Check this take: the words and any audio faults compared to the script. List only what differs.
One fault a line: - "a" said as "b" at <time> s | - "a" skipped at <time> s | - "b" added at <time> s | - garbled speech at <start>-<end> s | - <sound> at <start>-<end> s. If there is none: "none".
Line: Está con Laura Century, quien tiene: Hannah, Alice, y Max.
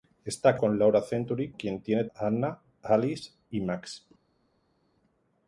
none